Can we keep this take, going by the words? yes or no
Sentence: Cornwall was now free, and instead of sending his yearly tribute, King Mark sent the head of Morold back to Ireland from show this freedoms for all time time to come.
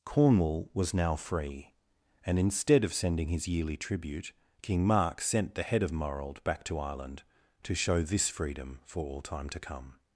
no